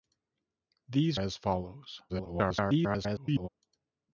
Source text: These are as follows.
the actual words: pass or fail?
fail